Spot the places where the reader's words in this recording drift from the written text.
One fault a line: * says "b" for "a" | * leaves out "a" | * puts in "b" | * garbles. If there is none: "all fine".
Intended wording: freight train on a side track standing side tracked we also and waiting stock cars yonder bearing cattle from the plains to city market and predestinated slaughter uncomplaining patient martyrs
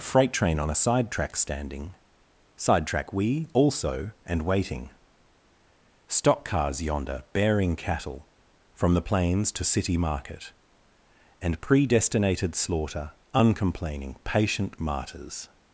* says "track" for "tracked"